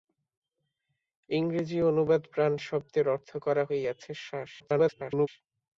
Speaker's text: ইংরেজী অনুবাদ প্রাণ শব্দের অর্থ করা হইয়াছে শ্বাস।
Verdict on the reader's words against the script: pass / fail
fail